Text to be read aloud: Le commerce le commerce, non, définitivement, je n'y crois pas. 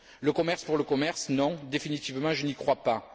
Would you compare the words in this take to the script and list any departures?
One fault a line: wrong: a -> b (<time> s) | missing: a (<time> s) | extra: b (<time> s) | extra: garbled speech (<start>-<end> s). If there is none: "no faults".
extra: pour (0.6 s)